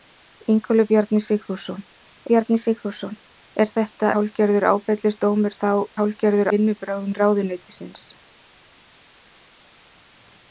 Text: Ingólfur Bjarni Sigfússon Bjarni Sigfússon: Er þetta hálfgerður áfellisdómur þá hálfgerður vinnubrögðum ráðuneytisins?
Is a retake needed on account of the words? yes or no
no